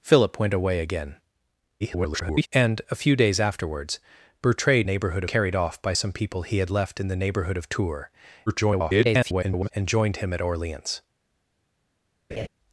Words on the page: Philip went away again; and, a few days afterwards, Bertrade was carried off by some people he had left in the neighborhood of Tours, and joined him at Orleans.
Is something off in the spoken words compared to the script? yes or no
yes